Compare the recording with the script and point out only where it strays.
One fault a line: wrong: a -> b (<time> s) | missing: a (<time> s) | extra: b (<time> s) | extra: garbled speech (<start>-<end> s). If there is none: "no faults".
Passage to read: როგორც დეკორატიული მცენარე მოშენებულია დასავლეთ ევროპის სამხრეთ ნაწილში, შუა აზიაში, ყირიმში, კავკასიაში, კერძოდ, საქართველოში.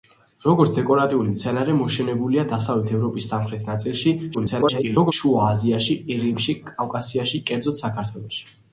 extra: garbled speech (4.3-5.1 s)